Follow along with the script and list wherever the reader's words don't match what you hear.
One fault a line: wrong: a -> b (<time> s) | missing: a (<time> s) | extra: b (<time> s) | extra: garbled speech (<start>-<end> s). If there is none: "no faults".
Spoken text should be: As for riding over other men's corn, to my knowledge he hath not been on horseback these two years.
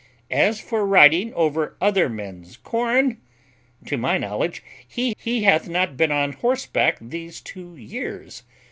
extra: he (5.2 s)